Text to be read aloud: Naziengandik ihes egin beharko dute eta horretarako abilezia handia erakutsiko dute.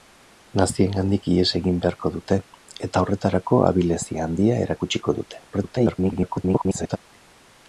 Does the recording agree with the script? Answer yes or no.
no